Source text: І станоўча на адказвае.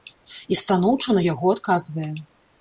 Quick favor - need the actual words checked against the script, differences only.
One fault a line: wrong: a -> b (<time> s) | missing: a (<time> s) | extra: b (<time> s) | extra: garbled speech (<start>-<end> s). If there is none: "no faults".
extra: яго (1.3 s)